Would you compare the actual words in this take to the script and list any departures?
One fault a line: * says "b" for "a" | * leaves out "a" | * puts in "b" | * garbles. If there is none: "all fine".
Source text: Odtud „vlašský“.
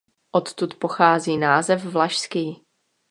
* puts in "pochází název"